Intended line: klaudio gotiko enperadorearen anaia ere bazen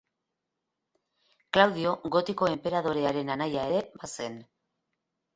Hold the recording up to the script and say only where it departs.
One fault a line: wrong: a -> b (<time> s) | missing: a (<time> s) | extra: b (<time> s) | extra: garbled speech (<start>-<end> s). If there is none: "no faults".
no faults